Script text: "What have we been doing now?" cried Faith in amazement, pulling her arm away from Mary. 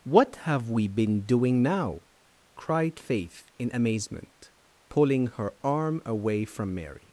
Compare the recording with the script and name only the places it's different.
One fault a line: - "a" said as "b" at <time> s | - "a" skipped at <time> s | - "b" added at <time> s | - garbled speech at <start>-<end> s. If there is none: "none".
none